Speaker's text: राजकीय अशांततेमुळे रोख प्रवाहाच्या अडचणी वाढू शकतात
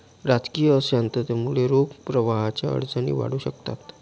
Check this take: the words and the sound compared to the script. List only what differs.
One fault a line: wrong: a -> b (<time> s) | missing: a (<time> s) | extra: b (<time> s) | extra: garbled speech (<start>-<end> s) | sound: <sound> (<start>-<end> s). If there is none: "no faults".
no faults